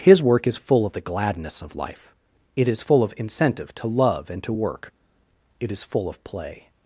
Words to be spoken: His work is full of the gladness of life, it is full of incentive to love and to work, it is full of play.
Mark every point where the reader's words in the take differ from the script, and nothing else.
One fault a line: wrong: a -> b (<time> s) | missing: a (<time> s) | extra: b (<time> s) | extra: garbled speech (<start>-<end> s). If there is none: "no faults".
no faults